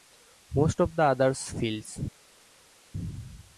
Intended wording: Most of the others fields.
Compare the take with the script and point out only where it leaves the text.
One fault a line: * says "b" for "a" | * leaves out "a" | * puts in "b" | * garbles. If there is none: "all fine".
all fine